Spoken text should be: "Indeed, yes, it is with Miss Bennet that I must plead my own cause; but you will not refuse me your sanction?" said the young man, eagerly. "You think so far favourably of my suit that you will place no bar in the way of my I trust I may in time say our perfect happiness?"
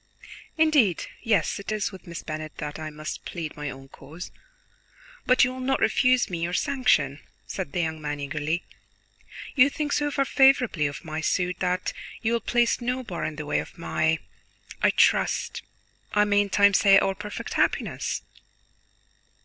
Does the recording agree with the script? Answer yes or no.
yes